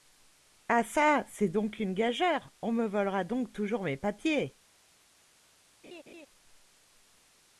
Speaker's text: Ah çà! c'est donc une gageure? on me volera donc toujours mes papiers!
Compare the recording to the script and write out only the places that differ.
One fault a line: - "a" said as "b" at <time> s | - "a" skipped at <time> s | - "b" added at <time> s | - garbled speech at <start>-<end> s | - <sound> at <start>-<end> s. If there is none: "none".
- laugh at 5.8-6.3 s